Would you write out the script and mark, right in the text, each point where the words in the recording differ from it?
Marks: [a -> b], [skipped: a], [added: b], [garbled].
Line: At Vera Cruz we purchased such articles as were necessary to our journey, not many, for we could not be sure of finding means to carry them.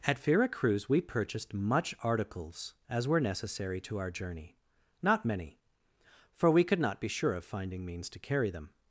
At Vera Cruz we purchased [such -> much] articles as were necessary to our journey, not many, for we could not be sure of finding means to carry them.